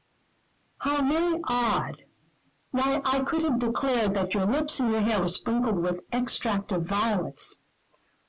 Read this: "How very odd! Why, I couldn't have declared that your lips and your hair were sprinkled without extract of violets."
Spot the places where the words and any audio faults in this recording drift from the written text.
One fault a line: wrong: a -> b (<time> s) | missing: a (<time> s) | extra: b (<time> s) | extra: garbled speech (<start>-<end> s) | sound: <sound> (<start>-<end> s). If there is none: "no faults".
wrong: couldn't -> could (3.2 s)
wrong: without -> with (5.8 s)